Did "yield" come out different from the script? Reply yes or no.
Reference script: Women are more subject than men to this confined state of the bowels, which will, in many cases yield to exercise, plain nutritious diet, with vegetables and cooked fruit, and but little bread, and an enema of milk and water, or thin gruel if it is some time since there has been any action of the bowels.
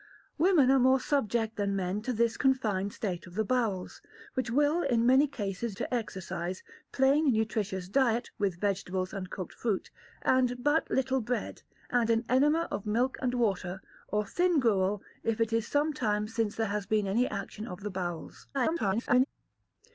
yes